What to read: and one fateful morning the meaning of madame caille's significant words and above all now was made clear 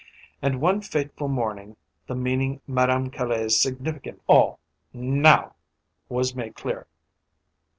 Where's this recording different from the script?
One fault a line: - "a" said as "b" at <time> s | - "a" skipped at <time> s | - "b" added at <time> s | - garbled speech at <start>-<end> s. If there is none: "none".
- "of" skipped at 2.6 s
- "words and above" skipped at 4.2 s